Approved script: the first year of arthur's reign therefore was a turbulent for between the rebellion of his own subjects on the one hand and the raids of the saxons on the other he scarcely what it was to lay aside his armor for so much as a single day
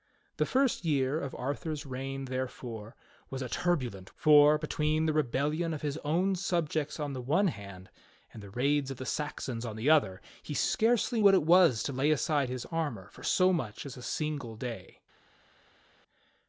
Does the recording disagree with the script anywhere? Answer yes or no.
no